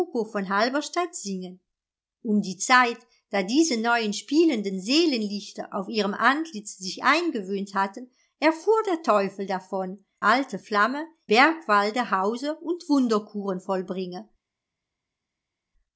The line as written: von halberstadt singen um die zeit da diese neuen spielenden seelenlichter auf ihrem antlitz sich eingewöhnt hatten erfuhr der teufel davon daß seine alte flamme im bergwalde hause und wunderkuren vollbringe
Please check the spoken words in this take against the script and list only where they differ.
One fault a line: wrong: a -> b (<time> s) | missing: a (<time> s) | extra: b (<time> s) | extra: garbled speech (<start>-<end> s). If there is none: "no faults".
missing: daß seine (10.0 s)
missing: im (11.1 s)